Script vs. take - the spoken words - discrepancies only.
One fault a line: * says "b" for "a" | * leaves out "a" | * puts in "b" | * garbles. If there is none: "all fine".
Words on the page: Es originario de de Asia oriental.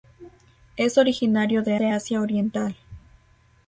all fine